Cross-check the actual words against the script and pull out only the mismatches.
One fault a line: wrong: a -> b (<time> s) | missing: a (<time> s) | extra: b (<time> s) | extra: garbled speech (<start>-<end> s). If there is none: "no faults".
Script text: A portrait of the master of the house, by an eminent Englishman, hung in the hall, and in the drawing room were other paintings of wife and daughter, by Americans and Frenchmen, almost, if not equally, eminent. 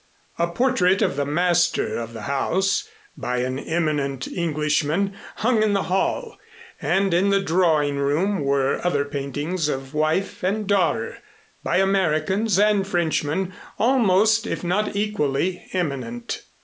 no faults